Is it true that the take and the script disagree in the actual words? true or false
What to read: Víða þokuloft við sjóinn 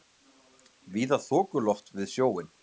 false